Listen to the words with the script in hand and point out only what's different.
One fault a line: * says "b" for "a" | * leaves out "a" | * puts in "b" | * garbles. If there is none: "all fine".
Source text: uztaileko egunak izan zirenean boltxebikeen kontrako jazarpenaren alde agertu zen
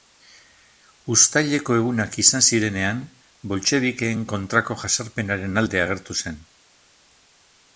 all fine